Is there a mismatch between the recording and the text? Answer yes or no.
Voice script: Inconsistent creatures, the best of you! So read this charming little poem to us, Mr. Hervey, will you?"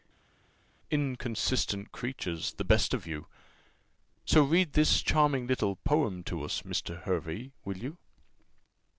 no